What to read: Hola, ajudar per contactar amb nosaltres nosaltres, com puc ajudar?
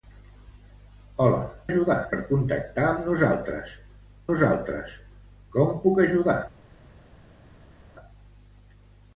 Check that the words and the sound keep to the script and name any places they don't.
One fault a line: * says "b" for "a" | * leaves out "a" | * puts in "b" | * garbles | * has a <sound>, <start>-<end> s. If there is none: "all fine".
all fine